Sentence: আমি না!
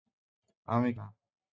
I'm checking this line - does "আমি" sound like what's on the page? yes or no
yes